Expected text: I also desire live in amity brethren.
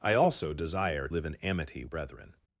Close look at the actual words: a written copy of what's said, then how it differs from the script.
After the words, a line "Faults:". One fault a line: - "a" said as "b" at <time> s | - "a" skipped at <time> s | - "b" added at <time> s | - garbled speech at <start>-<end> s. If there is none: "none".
I also desire live in amity brethren.
Faults:
none